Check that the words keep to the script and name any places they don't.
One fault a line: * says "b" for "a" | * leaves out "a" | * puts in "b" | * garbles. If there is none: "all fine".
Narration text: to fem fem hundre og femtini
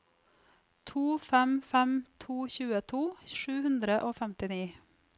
* puts in "to tjueto sju"